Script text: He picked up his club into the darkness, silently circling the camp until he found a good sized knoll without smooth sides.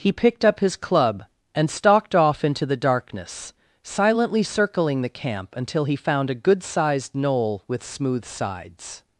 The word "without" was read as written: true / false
false